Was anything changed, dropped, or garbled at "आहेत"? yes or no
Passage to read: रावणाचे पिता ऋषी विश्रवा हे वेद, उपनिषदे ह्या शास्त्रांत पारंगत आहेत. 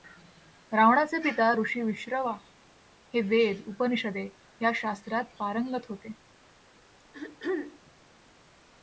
yes